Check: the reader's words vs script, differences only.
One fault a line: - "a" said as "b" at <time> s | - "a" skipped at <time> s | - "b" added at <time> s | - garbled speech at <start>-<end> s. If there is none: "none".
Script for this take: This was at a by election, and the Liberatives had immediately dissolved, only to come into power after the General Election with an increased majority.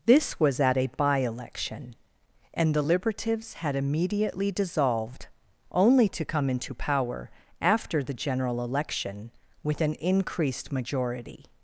none